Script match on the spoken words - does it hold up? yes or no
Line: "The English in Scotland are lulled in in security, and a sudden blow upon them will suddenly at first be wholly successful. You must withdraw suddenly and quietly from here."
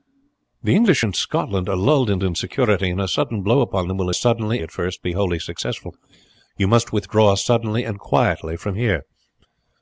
yes